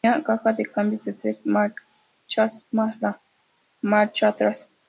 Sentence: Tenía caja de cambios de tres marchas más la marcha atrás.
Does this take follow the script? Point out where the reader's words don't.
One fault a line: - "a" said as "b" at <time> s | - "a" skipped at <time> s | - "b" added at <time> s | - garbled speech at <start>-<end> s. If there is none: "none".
none